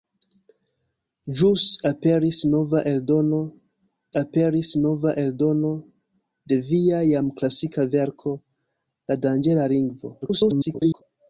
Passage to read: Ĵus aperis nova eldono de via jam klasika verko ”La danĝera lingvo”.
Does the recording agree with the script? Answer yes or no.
no